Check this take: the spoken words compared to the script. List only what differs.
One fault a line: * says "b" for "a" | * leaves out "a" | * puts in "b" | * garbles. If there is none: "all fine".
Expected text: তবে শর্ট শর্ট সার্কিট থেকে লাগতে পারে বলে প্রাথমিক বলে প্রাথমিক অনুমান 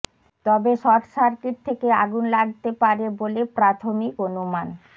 * leaves out "শর্ট"
* puts in "আগুন"
* leaves out "বলে প্রাথমিক"